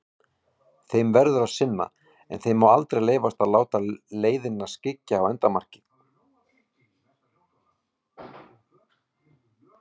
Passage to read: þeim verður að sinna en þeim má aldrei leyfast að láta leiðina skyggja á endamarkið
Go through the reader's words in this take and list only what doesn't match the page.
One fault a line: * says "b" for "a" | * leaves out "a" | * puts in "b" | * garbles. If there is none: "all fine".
all fine